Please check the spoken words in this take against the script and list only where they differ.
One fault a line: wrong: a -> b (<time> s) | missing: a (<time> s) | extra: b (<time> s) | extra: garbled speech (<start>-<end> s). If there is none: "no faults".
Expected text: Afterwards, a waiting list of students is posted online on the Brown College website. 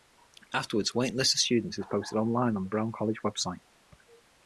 no faults